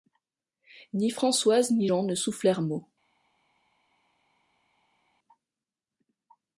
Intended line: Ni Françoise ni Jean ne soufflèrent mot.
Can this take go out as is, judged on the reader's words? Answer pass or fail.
pass